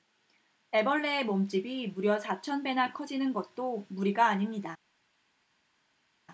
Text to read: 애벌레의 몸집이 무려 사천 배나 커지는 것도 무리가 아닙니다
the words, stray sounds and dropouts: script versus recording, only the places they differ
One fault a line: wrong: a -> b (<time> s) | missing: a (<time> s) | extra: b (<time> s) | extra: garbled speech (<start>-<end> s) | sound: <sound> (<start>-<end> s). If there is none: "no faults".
no faults